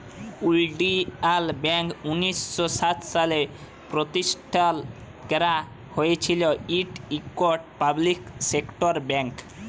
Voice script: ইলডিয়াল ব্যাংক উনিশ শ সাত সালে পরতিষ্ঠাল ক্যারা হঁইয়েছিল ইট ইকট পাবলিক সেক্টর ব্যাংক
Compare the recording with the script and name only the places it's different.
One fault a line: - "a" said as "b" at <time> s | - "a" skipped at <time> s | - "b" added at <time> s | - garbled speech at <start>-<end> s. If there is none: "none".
none